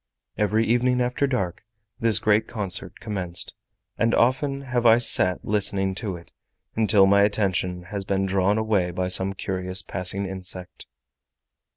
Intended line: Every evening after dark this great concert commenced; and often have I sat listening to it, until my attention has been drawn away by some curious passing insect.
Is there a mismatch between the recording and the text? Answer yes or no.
no